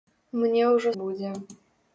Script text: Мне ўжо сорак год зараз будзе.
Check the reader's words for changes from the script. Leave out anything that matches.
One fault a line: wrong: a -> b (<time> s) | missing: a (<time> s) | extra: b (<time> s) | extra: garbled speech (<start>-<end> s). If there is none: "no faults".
missing: сорак год зараз (0.9 s)